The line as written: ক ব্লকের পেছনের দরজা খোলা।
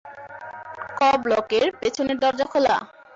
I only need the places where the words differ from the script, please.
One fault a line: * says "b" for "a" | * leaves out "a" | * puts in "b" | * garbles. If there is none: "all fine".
all fine